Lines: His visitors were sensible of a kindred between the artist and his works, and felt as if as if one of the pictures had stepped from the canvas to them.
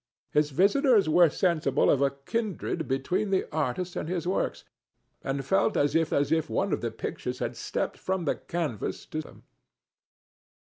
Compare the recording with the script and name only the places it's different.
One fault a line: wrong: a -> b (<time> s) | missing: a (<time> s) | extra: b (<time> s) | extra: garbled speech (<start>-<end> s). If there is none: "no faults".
no faults